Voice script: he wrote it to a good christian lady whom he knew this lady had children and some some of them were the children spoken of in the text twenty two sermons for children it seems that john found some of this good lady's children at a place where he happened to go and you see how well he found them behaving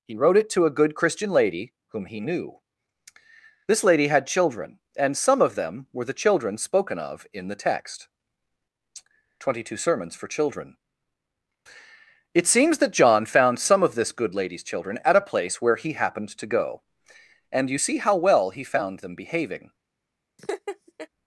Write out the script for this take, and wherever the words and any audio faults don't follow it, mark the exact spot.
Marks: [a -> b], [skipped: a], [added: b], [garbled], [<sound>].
he wrote it to a good christian lady whom he knew this lady had children and some [skipped: some] of them were the children spoken of in the text twenty two sermons for children it seems that john found some of this good lady's children at a place where he happened to go and you see how well he found them behaving [laugh]